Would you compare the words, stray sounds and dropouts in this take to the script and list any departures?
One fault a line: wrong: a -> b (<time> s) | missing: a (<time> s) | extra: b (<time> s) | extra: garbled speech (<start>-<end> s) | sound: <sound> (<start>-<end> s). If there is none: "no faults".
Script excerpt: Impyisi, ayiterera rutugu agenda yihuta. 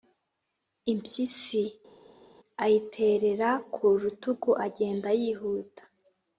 extra: ku (3.7 s)